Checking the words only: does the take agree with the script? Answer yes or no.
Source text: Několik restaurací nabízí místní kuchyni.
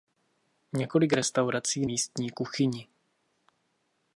no